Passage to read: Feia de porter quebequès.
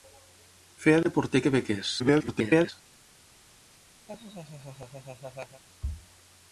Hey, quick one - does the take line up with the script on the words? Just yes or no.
no